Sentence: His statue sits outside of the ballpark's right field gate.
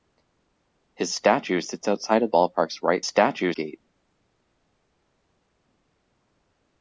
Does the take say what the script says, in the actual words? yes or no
no